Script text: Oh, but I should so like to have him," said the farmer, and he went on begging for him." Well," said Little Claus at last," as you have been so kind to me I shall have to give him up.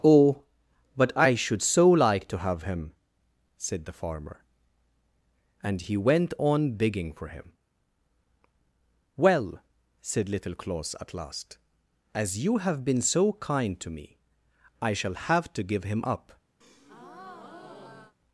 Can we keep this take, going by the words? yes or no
yes